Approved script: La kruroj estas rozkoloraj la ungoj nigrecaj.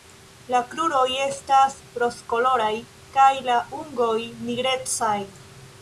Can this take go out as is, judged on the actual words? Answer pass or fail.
fail